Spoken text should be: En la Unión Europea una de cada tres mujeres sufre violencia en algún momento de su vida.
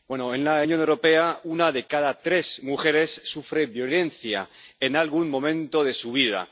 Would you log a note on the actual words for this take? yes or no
no